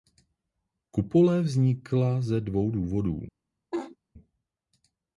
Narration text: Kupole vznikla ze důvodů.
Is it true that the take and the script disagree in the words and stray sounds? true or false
true